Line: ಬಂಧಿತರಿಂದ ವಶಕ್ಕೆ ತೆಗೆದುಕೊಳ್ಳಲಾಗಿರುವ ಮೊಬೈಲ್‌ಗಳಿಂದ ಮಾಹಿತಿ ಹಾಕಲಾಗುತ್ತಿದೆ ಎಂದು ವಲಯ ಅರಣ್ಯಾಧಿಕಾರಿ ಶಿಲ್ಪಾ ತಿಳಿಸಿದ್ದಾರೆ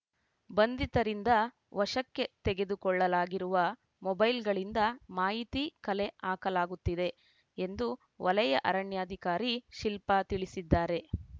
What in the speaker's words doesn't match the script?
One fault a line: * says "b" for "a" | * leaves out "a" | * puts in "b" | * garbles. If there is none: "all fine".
* puts in "ಕಲೆ"